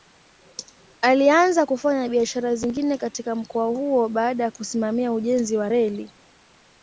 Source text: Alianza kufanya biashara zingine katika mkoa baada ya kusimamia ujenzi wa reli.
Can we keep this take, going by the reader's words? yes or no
no